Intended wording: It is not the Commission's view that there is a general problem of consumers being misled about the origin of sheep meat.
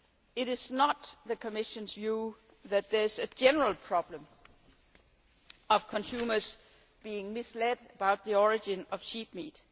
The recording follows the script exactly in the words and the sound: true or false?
true